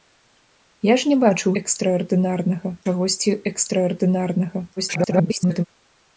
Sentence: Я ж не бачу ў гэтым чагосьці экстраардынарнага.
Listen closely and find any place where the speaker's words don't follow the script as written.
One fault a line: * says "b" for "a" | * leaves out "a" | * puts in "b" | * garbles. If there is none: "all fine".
* says "экстраардынарнага" for "гэтым"
* garbles